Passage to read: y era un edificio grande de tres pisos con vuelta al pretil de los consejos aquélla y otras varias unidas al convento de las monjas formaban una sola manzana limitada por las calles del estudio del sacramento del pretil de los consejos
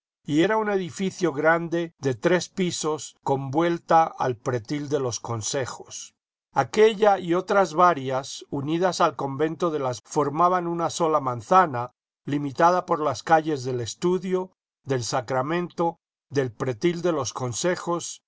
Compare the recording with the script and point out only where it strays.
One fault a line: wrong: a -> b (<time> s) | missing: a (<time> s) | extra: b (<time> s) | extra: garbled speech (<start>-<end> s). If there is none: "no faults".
missing: monjas (10.0 s)